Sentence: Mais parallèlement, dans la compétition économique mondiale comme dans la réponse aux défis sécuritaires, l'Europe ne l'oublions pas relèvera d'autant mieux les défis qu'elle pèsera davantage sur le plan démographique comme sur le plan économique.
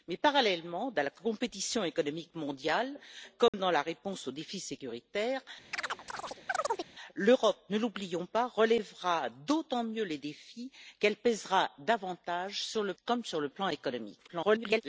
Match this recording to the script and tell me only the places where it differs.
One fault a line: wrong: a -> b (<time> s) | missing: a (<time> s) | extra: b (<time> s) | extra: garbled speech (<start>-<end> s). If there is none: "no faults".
missing: plan démographique (12.9 s)
extra: garbled speech (14.3-14.8 s)